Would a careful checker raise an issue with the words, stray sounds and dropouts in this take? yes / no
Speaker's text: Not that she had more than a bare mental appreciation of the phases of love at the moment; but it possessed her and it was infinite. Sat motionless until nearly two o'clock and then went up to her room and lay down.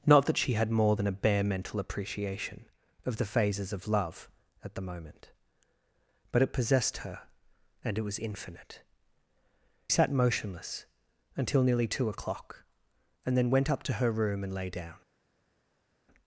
no